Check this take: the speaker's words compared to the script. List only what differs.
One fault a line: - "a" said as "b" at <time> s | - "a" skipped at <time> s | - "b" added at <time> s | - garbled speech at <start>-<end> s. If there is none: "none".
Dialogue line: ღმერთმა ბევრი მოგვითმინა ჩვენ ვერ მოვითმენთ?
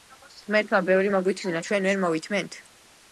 none